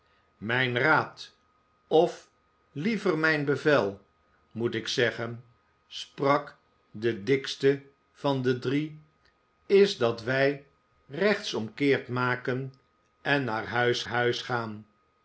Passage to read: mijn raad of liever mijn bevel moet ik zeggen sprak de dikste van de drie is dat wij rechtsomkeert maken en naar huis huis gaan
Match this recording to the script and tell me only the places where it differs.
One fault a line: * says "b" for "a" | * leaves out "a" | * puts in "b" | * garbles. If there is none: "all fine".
all fine